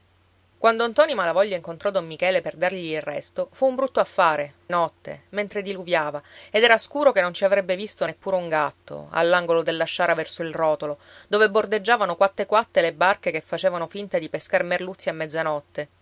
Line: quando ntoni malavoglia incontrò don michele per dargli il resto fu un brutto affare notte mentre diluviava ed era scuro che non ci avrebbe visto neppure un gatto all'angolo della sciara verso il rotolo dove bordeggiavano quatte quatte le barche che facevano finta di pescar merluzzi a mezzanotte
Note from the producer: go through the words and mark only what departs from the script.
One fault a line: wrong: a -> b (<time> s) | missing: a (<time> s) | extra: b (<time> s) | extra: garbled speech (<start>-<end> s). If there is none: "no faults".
no faults